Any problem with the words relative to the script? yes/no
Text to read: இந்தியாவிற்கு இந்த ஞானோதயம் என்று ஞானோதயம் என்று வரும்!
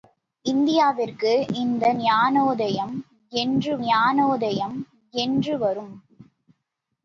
no